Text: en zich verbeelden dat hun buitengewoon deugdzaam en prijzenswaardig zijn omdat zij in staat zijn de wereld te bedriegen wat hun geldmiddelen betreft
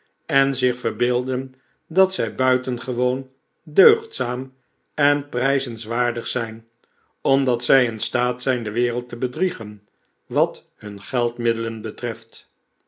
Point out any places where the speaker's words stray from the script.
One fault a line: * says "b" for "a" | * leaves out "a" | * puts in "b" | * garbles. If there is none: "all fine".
* says "zij" for "hun"